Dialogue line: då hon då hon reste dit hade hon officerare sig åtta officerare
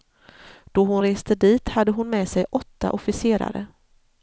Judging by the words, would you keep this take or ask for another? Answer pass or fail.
fail